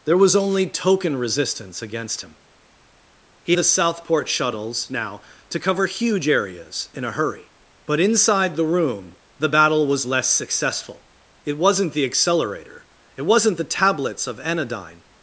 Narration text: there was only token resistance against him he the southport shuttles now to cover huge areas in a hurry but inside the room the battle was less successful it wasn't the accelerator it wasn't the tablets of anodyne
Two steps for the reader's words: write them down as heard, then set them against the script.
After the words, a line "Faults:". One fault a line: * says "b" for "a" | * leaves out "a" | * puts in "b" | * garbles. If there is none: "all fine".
there was only token resistance against him he the southport shuttles now to cover huge areas in a hurry but inside the room the battle was less successful it wasn't the accelerator it wasn't the tablets of anodyne
Faults:
all fine